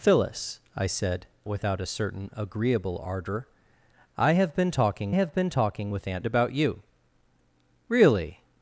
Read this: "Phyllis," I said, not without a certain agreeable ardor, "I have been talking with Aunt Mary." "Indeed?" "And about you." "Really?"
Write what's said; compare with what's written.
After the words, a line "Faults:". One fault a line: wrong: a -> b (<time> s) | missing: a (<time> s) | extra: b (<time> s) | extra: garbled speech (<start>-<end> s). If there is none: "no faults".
"Phyllis," I said, without a certain agreeable ardor, "I have been talking have been talking with Aunt About you." "Really?"
Faults:
missing: not (1.3 s)
wrong: with Aunt Mary Indeed And -> have been talking with Aunt (5.1 s)